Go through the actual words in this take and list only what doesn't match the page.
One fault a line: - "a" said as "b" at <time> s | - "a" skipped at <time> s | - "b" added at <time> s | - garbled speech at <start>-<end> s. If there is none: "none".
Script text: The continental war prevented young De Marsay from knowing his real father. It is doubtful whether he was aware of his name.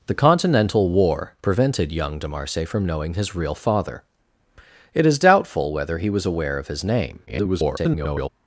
- garbled speech at 7.3-8.3 s